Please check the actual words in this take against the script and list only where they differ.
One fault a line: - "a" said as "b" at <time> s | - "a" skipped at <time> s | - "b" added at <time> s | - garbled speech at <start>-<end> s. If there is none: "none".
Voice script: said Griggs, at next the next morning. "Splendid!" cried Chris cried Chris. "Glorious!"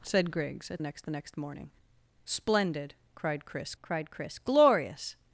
none